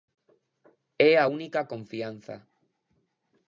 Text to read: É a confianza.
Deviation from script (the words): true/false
true